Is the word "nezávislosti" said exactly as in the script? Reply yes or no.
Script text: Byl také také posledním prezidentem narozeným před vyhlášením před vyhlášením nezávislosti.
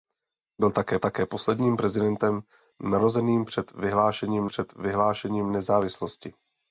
yes